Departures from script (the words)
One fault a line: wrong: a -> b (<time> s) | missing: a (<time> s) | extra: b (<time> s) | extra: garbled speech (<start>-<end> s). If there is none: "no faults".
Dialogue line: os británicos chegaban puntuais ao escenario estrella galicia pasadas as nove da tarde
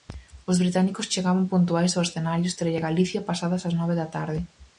no faults